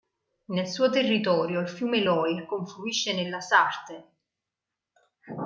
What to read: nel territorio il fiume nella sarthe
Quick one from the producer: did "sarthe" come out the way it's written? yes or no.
yes